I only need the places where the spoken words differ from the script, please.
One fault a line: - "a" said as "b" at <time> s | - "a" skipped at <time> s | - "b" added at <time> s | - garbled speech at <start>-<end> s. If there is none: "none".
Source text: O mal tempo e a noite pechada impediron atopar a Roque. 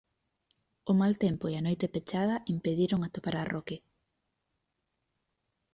none